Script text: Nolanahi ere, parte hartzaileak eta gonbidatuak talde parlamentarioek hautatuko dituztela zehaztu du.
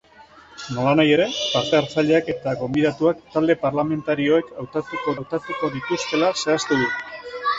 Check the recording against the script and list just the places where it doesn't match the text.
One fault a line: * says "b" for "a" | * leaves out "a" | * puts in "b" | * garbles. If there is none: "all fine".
* puts in "hautatuko"